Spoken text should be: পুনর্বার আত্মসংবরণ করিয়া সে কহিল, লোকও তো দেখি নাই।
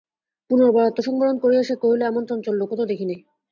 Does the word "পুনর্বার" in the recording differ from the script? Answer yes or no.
no